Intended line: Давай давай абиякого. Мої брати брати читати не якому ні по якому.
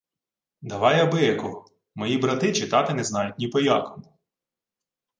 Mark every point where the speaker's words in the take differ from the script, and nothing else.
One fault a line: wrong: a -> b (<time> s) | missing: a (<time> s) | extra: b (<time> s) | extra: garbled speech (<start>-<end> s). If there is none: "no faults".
missing: давай (1.0 s)
missing: брати (2.5 s)
wrong: якому -> знають (3.0 s)